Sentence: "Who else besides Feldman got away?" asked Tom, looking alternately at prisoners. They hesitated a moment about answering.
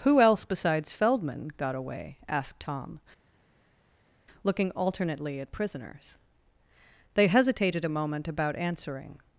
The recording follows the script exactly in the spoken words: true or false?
true